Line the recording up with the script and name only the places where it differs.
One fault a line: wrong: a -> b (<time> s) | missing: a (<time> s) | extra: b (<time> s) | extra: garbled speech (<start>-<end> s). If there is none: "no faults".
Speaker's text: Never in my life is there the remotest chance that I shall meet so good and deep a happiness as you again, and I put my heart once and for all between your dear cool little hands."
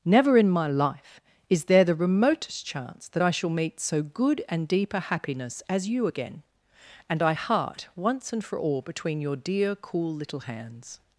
missing: put my (7.3 s)